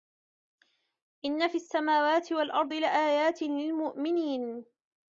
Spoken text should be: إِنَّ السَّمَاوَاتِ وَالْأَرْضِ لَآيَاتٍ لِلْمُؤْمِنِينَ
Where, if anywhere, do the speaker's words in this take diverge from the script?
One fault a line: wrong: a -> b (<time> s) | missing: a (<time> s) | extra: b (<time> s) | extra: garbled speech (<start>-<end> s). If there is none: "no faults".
extra: فِي (1.5 s)